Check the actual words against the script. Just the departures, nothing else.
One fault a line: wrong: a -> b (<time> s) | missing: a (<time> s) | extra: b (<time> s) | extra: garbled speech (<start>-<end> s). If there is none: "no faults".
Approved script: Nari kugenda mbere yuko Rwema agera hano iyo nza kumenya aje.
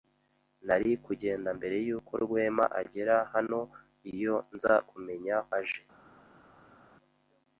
no faults